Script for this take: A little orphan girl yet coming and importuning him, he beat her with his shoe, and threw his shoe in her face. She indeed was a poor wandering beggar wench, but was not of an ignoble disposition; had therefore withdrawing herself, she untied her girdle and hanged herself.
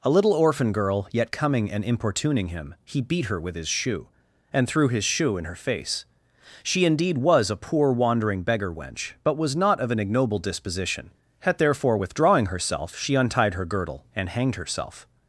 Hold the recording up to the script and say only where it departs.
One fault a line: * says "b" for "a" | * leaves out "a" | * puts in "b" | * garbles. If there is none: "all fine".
all fine